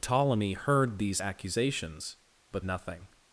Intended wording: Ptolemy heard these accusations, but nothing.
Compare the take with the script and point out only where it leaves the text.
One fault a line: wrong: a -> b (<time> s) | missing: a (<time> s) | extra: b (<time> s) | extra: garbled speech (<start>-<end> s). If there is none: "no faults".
no faults